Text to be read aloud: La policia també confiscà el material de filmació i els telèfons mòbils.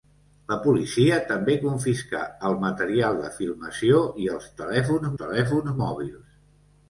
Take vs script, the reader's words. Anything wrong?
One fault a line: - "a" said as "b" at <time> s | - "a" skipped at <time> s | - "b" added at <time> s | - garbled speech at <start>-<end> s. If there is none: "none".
- "telèfons" added at 5.2 s